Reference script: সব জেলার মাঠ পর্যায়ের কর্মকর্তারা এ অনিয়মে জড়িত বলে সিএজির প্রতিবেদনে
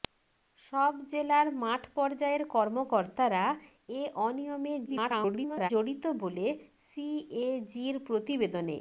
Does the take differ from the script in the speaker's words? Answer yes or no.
yes